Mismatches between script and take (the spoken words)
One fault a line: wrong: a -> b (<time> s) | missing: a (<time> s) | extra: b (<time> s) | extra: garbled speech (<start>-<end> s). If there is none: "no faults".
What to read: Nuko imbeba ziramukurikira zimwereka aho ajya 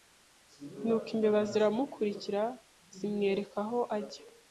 no faults